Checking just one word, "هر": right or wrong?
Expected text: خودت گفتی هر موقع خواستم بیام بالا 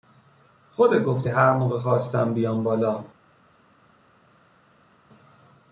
right